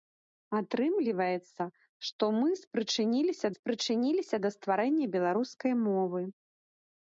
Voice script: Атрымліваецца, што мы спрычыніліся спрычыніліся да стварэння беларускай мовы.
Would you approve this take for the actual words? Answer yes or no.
yes